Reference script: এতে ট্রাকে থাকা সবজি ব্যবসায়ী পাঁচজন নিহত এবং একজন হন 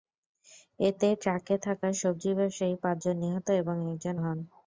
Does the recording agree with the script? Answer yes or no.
yes